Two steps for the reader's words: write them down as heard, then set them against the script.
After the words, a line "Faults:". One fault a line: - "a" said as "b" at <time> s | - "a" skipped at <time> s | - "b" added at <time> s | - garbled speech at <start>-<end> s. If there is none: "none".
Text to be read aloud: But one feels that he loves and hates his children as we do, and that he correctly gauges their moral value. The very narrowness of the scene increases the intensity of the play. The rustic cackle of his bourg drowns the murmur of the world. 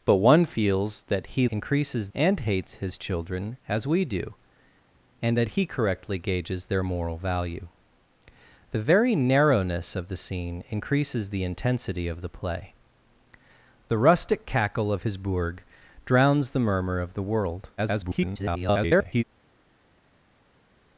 But one feels that he increases and hates his children as we do, and that he correctly gauges their moral value. The very narrowness of the scene increases the intensity of the play. The rustic cackle of his bourg drowns the murmur of the world. [garbled]
Faults:
- "loves" said as "increases" at 1.5 s
- garbled speech at 17.8-19.2 s